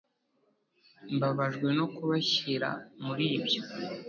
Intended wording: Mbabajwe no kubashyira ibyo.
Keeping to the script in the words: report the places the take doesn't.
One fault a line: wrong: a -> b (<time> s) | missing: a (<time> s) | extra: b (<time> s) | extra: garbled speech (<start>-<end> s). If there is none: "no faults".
extra: muri (3.0 s)